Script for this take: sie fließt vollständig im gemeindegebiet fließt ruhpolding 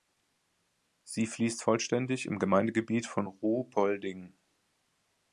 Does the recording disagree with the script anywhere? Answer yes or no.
yes